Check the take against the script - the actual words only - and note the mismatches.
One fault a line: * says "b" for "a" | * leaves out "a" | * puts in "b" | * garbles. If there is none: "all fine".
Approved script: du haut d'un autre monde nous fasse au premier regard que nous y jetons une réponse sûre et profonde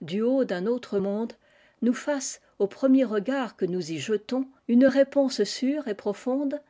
all fine